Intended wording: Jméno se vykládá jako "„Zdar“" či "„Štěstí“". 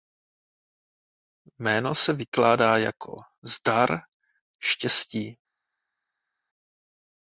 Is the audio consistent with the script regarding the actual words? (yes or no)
no